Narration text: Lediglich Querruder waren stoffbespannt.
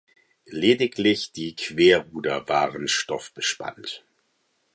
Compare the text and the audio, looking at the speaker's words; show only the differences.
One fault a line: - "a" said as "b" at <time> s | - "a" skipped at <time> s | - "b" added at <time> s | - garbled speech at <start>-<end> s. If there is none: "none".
- "die" added at 1.3 s